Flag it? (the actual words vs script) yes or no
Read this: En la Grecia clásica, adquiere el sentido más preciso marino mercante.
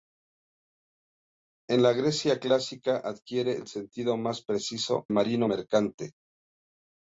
no